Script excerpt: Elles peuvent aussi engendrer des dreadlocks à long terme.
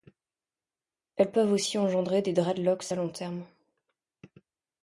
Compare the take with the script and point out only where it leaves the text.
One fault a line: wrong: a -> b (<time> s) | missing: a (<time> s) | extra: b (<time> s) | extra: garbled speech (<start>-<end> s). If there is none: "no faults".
no faults